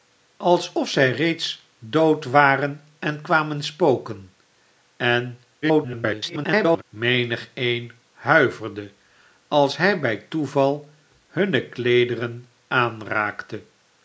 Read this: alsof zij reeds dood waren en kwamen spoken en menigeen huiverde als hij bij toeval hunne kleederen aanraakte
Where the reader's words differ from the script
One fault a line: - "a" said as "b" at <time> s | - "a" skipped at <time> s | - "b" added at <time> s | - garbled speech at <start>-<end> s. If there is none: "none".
- garbled speech at 5.6-6.8 s